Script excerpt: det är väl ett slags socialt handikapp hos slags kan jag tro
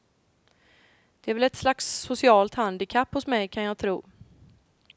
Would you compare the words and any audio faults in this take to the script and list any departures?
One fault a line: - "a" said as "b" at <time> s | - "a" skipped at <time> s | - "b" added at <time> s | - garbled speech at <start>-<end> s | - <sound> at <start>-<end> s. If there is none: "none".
- "slags" said as "mig" at 3.3 s